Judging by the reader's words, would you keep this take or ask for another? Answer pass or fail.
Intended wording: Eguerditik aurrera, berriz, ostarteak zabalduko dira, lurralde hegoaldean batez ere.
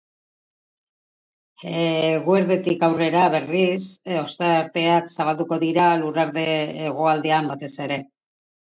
pass